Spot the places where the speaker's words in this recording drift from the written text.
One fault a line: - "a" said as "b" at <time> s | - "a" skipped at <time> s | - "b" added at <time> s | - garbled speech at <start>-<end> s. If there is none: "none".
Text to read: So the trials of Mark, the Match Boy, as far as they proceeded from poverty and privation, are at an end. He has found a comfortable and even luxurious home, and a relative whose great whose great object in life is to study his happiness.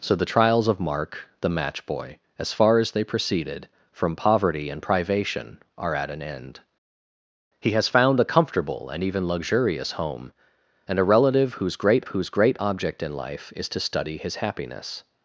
none